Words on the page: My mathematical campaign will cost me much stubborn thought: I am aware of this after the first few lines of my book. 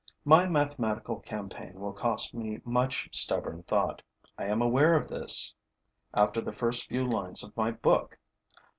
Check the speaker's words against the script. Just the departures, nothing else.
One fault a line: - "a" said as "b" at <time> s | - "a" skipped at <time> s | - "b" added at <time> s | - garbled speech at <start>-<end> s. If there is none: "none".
none